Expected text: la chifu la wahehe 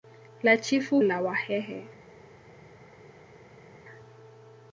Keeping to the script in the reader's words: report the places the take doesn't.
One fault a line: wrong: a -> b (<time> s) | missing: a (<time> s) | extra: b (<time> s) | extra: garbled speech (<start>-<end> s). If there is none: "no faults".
no faults